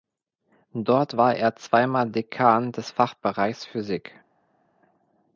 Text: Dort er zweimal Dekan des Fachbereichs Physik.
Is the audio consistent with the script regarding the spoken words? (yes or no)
no